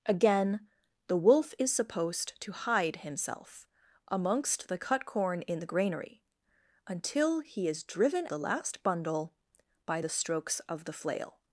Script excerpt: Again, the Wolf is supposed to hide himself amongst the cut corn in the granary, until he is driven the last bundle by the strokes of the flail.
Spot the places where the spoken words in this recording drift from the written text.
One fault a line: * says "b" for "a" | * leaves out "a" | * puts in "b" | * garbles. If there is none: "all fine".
all fine